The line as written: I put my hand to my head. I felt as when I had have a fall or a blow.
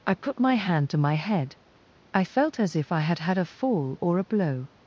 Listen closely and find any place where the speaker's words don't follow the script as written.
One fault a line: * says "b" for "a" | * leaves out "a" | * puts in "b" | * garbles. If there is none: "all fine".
* says "if" for "when"
* says "had" for "have"